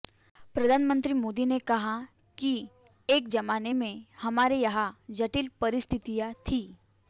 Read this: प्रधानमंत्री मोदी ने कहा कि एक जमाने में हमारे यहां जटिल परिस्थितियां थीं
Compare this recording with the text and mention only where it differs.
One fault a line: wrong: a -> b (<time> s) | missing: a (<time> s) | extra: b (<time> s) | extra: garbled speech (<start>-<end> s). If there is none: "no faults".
no faults